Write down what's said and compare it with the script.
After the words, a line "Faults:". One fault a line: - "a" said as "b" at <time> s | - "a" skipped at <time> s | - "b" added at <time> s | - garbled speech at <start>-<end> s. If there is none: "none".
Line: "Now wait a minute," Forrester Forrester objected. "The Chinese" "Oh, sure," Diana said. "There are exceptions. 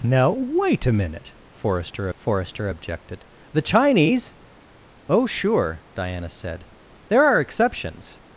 "Now wait a minute," Forrester Forrester objected. "The Chinese" "Oh, sure," Diana said. "There are exceptions.
Faults:
none